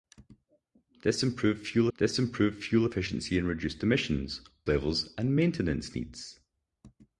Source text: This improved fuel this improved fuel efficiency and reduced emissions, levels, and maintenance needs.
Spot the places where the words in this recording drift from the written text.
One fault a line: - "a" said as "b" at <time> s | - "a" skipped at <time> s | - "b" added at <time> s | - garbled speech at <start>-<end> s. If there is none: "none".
none